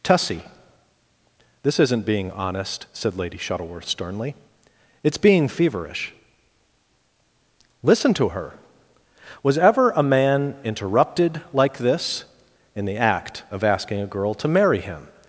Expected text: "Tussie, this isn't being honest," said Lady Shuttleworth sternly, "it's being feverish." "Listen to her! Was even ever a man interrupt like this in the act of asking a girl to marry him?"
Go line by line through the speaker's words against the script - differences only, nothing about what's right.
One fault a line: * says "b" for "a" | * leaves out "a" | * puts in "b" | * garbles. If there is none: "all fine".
* leaves out "even"
* says "interrupted" for "interrupt"